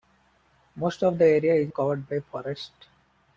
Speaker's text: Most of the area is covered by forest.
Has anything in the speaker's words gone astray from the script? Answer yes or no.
no